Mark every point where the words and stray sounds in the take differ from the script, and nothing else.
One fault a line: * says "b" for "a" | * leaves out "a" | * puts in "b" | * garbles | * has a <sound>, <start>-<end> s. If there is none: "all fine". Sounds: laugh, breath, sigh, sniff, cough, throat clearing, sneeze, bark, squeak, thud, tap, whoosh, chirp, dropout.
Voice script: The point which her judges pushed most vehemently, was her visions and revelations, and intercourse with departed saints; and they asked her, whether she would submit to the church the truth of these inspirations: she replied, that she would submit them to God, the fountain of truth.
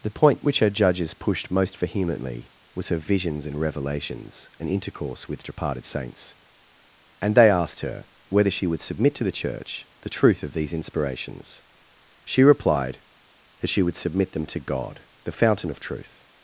all fine